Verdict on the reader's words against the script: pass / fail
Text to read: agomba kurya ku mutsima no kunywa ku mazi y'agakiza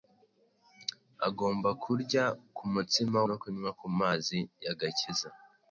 pass